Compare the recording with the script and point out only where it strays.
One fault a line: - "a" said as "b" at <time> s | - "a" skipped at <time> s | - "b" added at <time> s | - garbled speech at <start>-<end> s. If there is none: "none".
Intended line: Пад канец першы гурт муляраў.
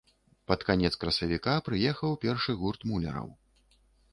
- "красавіка прыехаў" added at 1.0 s